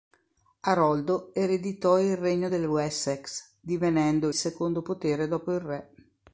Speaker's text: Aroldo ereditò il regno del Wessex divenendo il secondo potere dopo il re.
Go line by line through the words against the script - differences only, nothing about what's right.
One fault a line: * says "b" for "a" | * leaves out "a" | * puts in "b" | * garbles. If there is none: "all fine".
* leaves out "il"